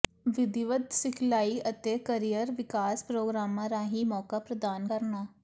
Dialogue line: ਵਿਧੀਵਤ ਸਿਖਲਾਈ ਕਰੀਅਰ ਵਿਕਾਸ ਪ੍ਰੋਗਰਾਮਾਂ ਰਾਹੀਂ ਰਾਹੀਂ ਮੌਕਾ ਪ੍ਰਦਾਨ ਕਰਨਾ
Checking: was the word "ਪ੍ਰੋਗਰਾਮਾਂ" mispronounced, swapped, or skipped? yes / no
no